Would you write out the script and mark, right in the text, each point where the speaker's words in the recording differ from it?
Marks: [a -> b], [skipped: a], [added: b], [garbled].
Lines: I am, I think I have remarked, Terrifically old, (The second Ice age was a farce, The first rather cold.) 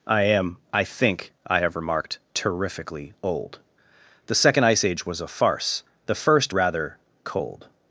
I am, I think I have remarked, Terrifically old, (The second Ice age was a farce, The first rather cold.)